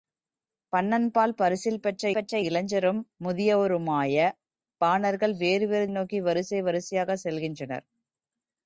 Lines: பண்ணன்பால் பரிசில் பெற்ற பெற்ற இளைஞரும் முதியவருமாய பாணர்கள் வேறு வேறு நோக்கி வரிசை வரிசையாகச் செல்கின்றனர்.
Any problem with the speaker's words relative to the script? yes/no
no